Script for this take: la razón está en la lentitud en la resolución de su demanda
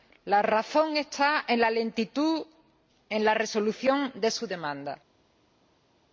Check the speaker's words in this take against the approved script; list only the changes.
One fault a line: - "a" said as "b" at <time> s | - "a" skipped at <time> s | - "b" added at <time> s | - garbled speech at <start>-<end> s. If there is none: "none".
none